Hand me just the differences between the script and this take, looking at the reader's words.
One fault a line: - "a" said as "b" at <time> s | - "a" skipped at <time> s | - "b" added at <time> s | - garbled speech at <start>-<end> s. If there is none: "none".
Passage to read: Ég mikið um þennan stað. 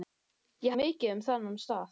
none